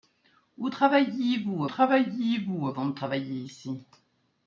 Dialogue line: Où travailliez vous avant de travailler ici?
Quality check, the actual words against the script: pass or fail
fail